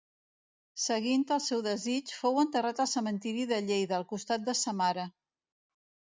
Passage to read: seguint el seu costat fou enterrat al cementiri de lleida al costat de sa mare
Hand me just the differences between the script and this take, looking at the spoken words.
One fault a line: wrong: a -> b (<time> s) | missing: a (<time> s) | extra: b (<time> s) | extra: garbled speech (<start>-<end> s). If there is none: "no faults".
wrong: costat -> desig (1.7 s)